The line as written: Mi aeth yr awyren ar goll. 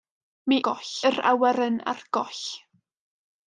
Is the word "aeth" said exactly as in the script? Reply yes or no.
no